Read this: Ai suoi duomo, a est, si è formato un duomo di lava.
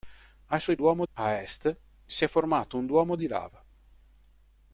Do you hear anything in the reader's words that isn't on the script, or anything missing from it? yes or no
no